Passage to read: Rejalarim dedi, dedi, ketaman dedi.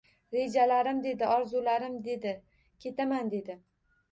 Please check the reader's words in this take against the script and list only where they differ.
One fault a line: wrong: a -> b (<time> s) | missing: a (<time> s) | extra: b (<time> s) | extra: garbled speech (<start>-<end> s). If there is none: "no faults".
extra: orzularim (1.3 s)